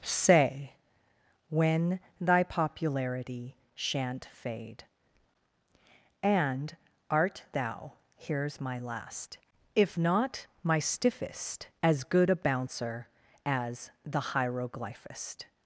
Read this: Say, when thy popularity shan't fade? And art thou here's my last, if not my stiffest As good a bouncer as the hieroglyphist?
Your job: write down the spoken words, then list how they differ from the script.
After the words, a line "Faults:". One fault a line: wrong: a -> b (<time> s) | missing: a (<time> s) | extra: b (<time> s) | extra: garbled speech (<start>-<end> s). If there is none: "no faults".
Say, when thy popularity shan't fade? And art thou here's my last, if not my stiffest As good a bouncer as the hieroglyphist?
Faults:
no faults